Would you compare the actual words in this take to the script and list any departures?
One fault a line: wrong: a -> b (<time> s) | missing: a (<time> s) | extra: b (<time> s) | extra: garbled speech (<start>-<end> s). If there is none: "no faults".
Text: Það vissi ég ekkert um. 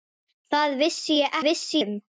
wrong: ekkert -> vissi (1.5 s)